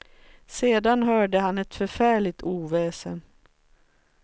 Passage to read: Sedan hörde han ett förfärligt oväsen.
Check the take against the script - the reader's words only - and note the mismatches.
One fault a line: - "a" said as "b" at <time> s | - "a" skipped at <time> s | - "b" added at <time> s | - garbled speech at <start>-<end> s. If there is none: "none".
none